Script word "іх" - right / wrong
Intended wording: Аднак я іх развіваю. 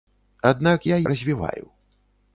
wrong